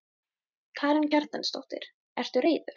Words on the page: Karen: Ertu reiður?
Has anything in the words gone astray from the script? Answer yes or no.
yes